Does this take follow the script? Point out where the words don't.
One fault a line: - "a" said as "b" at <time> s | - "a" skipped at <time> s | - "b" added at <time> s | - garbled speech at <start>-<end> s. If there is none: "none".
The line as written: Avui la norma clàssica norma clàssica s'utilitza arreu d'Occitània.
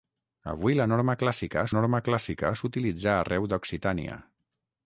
none